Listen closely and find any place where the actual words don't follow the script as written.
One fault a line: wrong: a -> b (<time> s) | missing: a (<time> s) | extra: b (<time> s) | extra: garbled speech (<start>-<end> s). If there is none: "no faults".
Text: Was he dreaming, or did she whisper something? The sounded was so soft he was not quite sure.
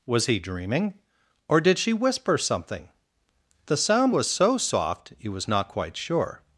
wrong: sounded -> sound (3.8 s)